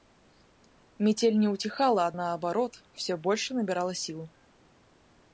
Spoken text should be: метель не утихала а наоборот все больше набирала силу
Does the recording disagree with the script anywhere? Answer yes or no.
no